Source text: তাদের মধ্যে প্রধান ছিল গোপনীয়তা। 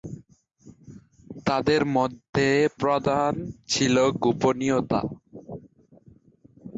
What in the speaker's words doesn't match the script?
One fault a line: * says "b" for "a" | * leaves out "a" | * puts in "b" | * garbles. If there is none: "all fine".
all fine